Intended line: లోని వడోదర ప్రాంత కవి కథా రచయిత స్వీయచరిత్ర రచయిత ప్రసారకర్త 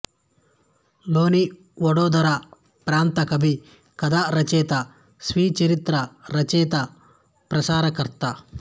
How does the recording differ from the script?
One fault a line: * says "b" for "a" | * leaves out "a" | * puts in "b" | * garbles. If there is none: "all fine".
all fine